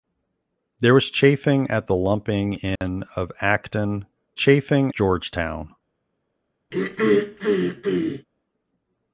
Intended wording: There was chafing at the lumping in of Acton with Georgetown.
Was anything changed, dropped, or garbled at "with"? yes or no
yes